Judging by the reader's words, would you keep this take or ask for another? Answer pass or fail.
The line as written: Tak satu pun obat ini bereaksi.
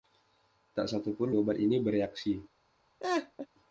pass